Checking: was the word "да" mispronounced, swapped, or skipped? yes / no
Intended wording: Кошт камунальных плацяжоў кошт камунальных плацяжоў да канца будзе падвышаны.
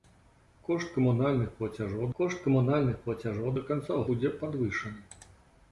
no